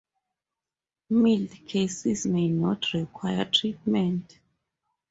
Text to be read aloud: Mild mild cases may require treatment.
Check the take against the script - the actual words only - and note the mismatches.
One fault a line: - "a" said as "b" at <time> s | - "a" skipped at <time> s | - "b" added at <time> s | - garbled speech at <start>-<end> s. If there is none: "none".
- "mild" skipped at 1.5 s
- "not" added at 2.5 s